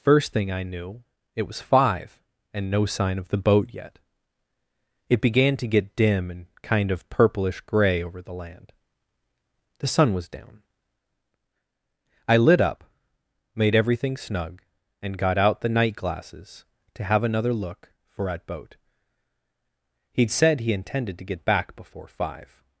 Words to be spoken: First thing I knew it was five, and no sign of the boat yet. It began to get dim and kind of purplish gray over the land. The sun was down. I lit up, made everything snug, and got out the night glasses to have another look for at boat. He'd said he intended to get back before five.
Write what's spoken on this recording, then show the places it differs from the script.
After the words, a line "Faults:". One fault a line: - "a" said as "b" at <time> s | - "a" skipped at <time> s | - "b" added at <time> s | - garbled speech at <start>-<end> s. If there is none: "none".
First thing I knew it was five, and no sign of the boat yet. It began to get dim and kind of purplish gray over the land. The sun was down. I lit up, made everything snug, and got out the night glasses to have another look for at boat. He'd said he intended to get back before five.
Faults:
none